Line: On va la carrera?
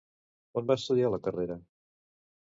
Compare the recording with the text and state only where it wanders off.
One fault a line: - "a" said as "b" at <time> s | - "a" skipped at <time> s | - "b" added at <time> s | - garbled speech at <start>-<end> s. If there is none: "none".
- "estudiar" added at 0.8 s